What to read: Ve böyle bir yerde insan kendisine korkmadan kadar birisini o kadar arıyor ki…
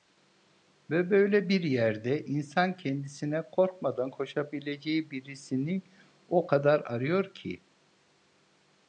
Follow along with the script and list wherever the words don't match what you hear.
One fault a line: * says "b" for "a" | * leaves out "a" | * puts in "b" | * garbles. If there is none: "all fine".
* says "koşabileceği" for "kadar"